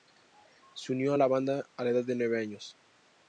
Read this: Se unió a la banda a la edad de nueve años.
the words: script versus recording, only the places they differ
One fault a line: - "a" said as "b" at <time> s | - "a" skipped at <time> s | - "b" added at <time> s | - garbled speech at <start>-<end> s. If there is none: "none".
none